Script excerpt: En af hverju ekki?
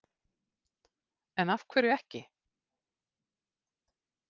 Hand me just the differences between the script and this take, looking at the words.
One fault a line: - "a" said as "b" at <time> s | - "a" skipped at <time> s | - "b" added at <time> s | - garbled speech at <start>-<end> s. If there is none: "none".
none